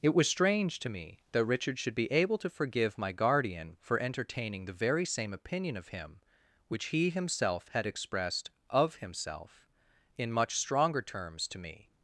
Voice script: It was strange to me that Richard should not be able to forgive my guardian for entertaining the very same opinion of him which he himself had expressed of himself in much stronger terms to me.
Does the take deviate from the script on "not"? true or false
true